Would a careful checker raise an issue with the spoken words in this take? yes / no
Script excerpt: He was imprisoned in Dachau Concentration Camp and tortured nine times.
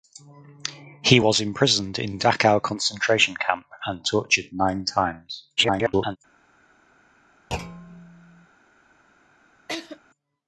yes